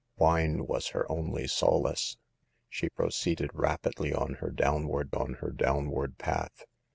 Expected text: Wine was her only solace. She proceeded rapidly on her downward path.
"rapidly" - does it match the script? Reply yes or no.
yes